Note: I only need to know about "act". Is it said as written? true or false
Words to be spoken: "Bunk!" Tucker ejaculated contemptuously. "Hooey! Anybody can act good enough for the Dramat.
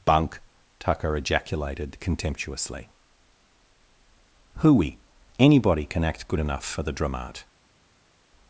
true